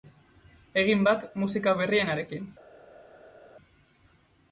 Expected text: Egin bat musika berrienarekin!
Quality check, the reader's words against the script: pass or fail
pass